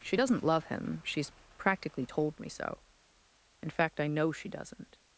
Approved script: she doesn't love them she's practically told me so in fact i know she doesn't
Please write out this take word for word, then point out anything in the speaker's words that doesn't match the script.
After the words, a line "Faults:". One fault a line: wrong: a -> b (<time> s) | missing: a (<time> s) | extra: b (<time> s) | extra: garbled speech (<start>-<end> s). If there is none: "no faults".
she doesn't love him she's practically told me so in fact i know she doesn't
Faults:
wrong: them -> him (0.7 s)